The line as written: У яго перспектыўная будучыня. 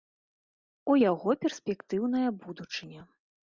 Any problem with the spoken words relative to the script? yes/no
no